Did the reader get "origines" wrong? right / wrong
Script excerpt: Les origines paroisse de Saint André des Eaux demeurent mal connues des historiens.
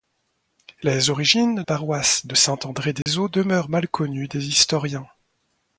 right